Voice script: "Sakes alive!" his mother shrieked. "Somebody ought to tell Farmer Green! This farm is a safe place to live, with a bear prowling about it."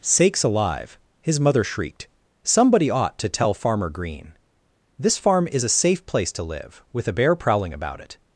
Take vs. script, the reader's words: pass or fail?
pass